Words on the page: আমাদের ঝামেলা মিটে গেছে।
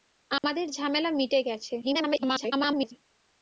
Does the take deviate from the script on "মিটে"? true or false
false